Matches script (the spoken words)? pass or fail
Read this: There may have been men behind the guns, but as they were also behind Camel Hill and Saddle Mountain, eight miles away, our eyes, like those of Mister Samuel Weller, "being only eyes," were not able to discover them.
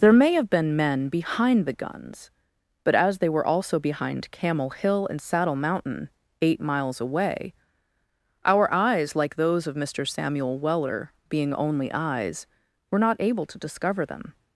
pass